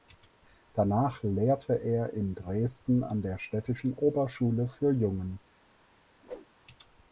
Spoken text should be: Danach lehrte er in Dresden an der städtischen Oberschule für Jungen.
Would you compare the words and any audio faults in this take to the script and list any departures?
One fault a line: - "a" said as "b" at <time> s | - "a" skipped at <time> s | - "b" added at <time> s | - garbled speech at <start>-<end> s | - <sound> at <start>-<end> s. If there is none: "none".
- whoosh at 6.2-6.5 s